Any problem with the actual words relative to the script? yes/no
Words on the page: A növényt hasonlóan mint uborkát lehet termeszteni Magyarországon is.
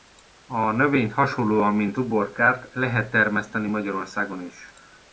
no